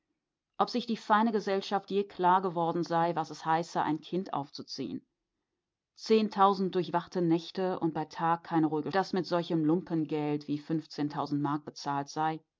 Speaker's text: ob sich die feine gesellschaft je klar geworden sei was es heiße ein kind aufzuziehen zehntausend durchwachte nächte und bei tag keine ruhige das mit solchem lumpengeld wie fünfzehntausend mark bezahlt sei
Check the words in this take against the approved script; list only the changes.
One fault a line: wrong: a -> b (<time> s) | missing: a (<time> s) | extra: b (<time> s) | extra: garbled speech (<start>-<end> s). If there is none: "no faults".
no faults